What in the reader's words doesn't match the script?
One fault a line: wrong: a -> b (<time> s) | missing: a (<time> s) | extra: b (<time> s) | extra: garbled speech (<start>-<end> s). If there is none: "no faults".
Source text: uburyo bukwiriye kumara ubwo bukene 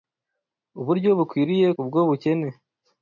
missing: kumara (1.7 s)